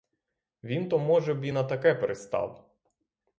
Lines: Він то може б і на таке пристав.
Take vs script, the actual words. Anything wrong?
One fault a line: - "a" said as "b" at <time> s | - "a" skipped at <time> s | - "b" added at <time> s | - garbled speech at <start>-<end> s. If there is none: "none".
none